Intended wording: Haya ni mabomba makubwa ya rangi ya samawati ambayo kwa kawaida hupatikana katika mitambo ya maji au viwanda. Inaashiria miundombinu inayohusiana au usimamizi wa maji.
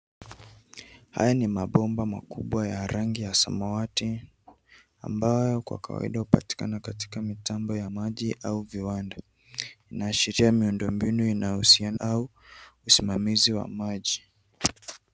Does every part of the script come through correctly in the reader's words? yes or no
yes